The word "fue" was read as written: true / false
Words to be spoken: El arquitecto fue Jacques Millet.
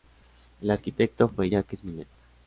true